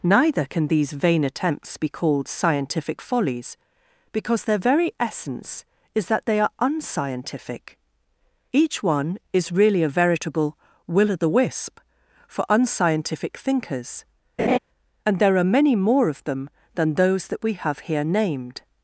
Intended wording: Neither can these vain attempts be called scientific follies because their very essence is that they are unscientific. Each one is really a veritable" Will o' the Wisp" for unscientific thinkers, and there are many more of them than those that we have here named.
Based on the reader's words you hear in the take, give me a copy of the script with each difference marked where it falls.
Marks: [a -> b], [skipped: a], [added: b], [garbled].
Neither can these vain attempts be called scientific follies because their very essence is that they are unscientific. Each one is really a veritable" Will o' the Wisp" for unscientific thinkers, and there are many more of them than those that we have here named.